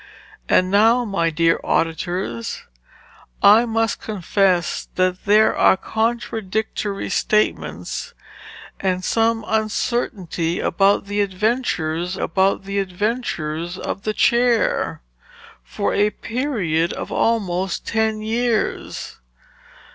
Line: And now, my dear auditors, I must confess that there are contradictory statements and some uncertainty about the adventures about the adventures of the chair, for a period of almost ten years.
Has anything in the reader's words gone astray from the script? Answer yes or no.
no